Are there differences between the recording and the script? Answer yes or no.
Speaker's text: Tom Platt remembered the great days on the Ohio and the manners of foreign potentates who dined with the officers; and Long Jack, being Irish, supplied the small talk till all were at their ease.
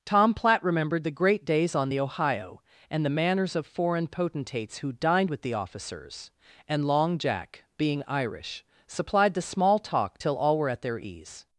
no